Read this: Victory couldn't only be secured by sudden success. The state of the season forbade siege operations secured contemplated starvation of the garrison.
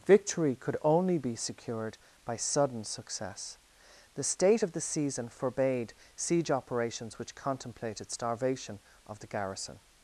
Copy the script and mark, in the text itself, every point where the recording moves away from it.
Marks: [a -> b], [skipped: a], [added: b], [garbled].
Victory [couldn't -> could] only be secured by sudden success. The state of the season forbade siege operations [secured -> which] contemplated starvation of the garrison.